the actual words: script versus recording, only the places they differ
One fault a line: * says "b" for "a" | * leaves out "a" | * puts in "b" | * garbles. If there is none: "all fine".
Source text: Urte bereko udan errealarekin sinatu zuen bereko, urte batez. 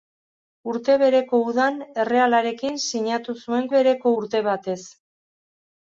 all fine